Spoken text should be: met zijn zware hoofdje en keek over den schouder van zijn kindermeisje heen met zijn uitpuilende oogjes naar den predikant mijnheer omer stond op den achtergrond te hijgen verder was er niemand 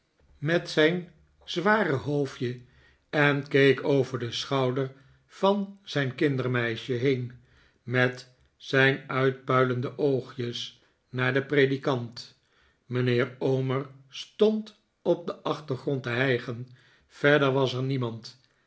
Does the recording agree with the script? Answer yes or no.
yes